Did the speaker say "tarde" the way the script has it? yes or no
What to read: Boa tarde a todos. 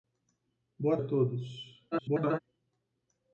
no